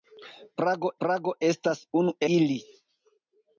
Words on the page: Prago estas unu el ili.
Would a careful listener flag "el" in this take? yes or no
yes